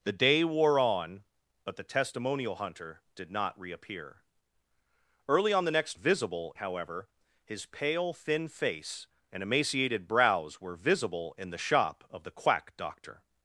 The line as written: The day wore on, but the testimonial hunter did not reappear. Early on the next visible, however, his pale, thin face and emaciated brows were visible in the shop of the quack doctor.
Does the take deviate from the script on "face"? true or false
false